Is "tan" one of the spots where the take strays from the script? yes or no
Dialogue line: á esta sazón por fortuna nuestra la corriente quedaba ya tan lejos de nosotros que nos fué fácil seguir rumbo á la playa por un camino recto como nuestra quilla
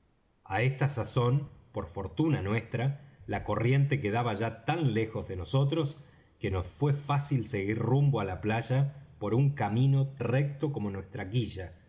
no